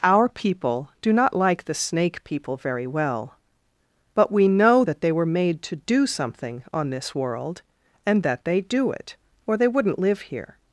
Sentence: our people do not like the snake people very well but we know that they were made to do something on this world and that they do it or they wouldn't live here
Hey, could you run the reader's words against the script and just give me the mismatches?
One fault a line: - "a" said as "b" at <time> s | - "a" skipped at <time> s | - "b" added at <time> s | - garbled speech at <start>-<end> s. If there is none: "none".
none